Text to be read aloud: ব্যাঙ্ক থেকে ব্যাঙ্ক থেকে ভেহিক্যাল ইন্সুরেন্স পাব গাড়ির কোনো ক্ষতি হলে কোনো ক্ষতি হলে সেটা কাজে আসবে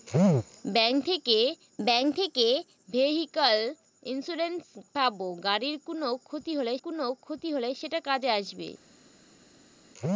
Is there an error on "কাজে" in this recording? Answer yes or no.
no